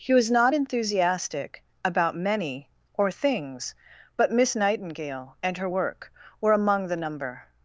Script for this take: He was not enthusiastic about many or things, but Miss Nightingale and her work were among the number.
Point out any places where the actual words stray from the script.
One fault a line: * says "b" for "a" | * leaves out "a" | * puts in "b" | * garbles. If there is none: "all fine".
all fine